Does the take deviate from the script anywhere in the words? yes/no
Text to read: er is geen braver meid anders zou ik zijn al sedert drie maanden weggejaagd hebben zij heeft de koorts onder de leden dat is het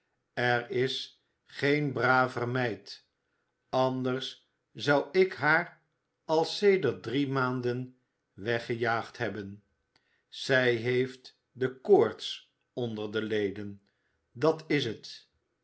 yes